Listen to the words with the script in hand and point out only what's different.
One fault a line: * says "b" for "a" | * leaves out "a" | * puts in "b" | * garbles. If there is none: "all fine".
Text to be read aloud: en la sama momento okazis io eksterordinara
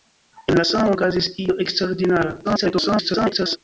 * leaves out "momento"
* garbles